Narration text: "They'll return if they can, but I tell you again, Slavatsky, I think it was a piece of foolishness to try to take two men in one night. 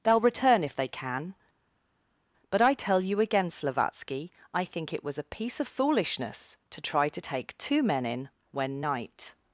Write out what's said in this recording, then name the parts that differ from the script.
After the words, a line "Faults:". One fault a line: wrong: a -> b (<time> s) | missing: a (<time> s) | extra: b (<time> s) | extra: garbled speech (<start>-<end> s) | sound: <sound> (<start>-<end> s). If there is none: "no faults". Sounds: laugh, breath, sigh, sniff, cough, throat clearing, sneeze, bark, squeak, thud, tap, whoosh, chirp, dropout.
"They'll return if they can, but I tell you again, Slavatsky, I think it was a piece of foolishness to try to take two men in when night.
Faults:
wrong: one -> when (8.5 s)